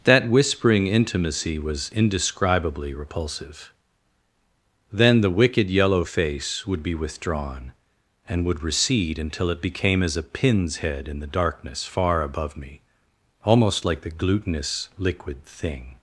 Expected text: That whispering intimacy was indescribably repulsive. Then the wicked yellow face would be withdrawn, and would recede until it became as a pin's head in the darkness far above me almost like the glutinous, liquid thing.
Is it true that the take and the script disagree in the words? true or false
false